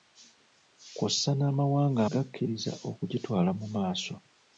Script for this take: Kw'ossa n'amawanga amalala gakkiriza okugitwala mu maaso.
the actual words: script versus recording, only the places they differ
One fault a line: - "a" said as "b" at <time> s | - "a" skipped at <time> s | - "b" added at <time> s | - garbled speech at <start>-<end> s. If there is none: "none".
- "amalala" skipped at 2.0 s